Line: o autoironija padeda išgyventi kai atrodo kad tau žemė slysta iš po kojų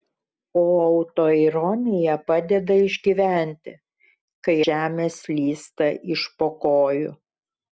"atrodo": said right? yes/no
no